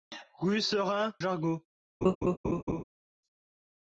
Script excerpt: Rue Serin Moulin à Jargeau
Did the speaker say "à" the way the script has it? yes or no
no